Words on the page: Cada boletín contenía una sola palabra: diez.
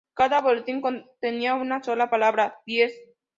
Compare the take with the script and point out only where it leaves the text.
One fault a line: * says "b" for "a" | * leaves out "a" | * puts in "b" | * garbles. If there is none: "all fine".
all fine